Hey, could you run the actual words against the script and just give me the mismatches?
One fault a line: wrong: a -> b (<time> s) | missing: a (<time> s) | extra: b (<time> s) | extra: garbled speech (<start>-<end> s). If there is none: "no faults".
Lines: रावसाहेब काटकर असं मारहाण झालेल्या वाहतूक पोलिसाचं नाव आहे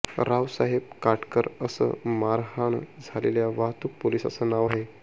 no faults